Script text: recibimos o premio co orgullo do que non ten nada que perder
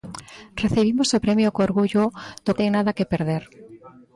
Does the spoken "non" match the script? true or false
false